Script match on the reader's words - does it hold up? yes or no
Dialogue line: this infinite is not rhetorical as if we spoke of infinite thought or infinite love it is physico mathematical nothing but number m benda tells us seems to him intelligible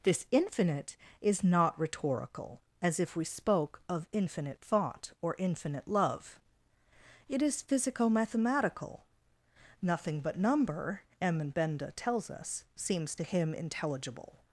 yes